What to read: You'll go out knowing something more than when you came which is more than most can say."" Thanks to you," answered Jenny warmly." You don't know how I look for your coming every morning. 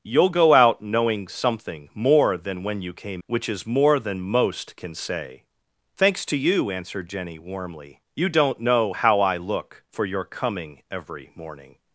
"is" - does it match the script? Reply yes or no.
yes